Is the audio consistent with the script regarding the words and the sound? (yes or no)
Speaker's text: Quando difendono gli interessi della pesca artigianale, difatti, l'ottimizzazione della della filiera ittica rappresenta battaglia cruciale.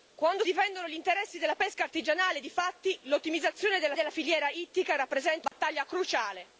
no